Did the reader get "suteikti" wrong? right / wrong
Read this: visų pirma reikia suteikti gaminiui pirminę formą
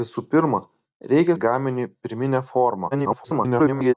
wrong